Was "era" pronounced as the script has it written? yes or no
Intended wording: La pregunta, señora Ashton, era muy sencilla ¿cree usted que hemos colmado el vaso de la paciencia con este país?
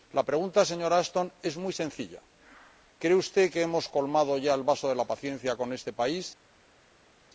no